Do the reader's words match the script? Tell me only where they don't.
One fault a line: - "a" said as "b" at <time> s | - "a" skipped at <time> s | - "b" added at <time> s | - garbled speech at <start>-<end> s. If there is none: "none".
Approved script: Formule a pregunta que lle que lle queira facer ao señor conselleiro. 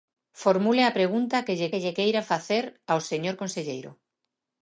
none